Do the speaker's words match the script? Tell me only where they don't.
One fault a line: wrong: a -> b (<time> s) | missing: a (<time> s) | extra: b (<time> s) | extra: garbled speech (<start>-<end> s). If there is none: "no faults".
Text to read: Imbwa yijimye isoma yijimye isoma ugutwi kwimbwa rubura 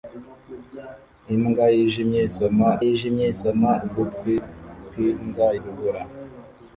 no faults